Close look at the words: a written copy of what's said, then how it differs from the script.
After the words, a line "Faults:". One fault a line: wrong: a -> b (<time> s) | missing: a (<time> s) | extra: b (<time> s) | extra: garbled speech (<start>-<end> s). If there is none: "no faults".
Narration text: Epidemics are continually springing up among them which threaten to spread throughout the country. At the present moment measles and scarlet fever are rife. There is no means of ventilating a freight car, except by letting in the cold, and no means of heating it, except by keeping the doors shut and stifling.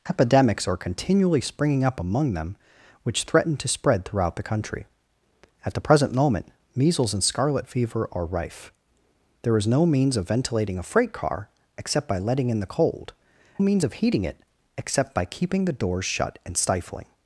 Epidemics are continually springing up among them which threaten to spread throughout the country. At the present moment measles and scarlet fever are rife. There is no means of ventilating a freight car, except by letting in the cold, means of heating it, except by keeping the doors shut and stifling.
Faults:
missing: and no (13.1 s)